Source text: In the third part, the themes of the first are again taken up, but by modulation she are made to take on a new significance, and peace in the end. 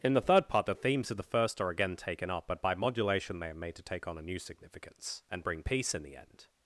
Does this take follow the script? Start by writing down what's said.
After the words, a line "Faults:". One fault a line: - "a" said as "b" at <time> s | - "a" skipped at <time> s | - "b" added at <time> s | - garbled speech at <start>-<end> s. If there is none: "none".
In the third part, the themes of the first are again taken up, but by modulation they are made to take on a new significance, and bring peace in the end.
Faults:
- "she" said as "they" at 3.4 s
- "bring" added at 5.4 s